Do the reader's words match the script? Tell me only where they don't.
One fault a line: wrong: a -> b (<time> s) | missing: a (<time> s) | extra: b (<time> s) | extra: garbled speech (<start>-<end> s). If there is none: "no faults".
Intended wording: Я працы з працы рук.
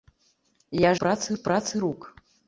no faults